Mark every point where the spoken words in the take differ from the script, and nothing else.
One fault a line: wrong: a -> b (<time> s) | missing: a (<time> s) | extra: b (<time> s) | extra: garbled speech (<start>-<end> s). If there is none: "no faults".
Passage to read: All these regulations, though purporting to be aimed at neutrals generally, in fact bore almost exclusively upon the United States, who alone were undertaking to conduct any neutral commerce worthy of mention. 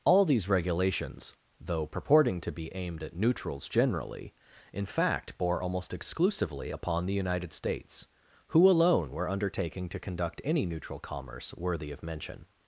no faults